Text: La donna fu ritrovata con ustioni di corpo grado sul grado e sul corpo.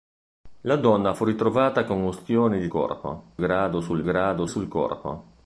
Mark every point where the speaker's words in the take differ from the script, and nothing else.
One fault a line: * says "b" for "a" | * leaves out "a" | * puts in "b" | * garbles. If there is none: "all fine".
all fine